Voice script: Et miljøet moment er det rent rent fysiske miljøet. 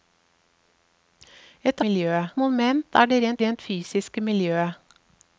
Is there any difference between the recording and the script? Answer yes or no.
no